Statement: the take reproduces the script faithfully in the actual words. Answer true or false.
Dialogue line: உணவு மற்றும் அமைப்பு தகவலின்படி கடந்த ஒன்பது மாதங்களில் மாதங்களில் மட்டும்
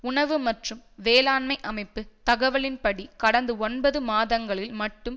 false